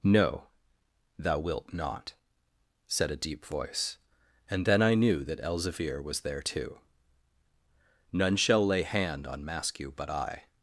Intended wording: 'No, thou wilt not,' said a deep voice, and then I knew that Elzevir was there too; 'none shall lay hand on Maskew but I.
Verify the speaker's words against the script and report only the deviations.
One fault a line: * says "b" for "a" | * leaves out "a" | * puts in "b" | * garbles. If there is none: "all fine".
all fine